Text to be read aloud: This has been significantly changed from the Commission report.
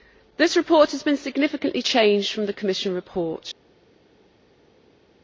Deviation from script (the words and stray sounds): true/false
true